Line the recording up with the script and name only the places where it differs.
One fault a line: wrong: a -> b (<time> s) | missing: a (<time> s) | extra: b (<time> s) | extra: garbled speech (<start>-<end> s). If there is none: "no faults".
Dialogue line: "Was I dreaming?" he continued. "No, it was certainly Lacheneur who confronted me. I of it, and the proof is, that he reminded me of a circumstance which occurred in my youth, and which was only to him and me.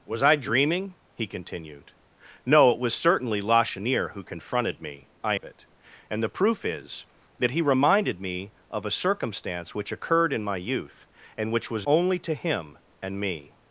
no faults